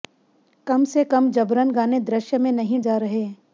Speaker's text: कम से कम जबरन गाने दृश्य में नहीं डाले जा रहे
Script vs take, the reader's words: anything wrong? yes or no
yes